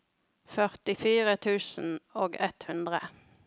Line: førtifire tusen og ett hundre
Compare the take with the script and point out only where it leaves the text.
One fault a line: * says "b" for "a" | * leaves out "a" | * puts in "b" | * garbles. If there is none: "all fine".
all fine